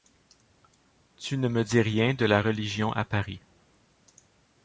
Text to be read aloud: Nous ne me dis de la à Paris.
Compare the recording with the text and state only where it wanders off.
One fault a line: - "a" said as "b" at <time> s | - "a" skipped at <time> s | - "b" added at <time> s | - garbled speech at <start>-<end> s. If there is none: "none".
- "Nous" said as "Tu" at 1.1 s
- "rien" added at 1.8 s
- "religion" added at 2.4 s